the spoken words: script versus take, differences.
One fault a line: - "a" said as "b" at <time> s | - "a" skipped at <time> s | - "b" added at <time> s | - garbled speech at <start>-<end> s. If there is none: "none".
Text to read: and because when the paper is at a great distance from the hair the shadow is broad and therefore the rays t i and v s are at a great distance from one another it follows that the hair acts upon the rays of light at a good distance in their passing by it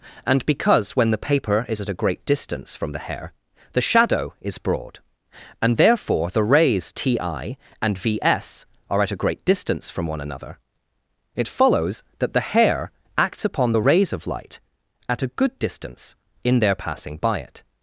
none